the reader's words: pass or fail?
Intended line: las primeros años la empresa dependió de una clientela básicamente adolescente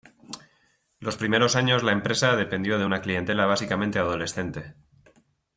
fail